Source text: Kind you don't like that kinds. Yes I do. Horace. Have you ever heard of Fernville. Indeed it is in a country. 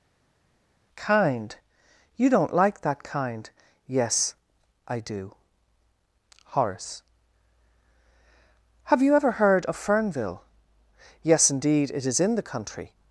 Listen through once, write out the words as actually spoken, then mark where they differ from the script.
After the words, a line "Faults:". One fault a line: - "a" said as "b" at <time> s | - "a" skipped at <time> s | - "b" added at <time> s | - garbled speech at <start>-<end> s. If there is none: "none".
Kind you don't like that kind. Yes I do. Horace. Have you ever heard of Fernville. Yes indeed it is in the country.
Faults:
- "kinds" said as "kind" at 3.0 s
- "Yes" added at 11.2 s
- "a" said as "the" at 12.3 s